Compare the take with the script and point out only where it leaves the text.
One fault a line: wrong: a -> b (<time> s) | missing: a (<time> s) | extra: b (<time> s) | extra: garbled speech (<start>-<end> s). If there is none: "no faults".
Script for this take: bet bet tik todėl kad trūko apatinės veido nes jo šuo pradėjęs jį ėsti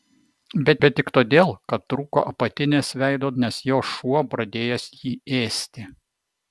no faults